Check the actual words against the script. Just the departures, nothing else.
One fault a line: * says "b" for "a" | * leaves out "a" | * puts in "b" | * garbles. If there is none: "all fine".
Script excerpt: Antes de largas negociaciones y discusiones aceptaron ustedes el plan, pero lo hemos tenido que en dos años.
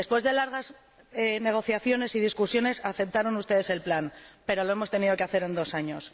* says "Después" for "Antes"
* puts in "hacer"